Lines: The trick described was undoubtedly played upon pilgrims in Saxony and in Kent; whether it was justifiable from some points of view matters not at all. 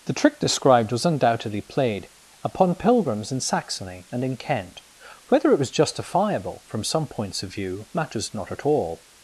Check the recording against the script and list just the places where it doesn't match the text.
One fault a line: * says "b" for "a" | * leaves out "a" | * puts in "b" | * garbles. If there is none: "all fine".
all fine